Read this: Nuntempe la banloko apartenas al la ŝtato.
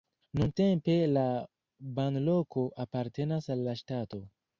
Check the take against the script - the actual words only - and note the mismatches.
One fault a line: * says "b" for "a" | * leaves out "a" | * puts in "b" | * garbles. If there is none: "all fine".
all fine